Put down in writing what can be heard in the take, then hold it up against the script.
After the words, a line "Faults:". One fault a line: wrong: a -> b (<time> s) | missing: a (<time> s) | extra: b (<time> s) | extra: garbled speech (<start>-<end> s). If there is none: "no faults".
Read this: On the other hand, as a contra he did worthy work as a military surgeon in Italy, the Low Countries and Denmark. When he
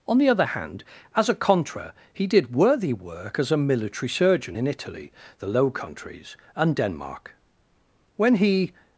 On the other hand, as a contra he did worthy work as a military surgeon in Italy, the Low Countries and Denmark. When he
Faults:
no faults